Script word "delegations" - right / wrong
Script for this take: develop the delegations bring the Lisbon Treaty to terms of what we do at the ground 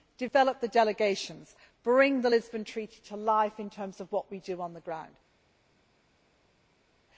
right